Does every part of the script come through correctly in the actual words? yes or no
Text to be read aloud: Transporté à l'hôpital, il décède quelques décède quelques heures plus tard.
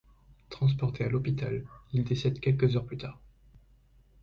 no